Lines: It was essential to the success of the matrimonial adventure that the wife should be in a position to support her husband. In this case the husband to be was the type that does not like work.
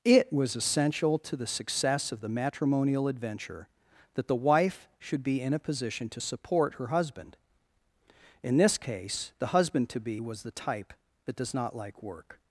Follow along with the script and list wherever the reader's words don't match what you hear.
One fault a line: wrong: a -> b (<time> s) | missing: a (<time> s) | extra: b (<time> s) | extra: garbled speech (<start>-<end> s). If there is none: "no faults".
no faults